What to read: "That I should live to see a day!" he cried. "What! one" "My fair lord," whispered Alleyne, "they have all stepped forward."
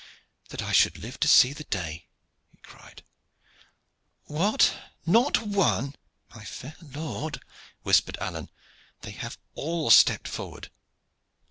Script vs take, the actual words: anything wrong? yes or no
yes